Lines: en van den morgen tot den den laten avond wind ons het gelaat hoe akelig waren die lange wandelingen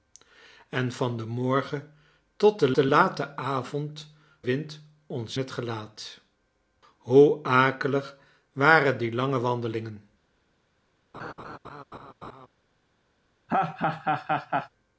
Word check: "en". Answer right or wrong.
right